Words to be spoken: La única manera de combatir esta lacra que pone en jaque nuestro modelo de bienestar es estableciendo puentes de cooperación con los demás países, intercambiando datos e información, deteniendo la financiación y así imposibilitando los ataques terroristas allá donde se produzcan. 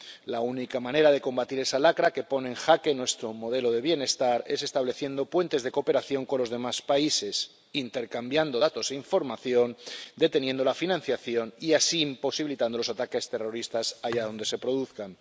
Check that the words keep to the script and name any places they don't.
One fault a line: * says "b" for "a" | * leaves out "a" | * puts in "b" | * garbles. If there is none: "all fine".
* says "esa" for "esta"